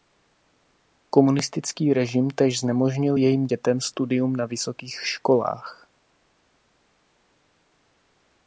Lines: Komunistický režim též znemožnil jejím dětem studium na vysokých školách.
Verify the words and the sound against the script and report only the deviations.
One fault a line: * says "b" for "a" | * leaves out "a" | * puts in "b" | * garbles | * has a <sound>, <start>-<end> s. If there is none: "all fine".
all fine